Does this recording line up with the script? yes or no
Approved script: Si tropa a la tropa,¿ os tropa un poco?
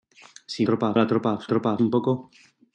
yes